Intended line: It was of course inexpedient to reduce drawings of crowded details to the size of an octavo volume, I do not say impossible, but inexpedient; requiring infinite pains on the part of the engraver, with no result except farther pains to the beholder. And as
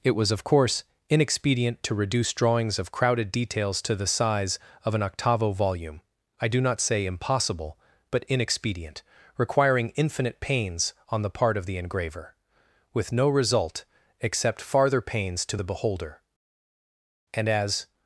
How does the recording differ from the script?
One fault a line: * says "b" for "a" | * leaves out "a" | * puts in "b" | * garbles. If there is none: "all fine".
all fine